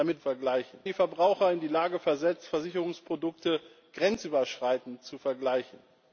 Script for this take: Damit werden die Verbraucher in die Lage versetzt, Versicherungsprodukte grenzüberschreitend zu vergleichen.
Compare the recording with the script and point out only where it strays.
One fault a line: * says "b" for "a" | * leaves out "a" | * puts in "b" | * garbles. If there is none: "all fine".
* says "vergleichen" for "werden"